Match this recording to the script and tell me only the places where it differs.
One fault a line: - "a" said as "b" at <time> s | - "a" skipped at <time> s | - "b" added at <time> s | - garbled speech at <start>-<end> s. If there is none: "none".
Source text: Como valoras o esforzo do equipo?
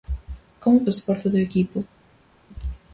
- "valoras" skipped at 0.9 s